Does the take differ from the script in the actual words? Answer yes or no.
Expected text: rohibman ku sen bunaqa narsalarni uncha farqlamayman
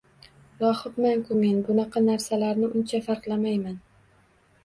yes